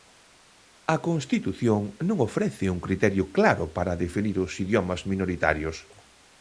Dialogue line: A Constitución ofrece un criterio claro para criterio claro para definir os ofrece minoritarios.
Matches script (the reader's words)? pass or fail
fail